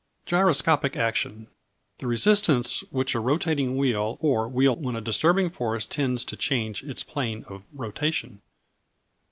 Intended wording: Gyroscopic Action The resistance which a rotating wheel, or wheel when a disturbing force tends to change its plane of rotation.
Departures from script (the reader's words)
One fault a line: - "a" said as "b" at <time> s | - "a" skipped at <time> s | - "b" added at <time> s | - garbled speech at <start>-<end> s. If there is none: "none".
none